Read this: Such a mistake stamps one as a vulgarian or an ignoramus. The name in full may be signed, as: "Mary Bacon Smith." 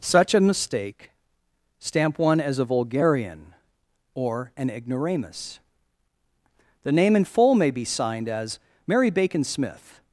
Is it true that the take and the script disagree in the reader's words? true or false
true